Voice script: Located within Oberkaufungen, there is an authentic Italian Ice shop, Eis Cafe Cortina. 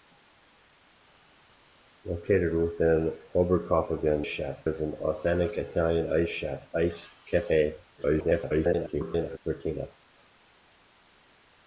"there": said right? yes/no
no